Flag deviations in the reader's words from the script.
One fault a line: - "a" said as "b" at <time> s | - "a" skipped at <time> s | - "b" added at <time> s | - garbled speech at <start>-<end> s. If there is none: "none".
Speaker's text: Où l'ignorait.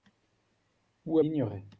none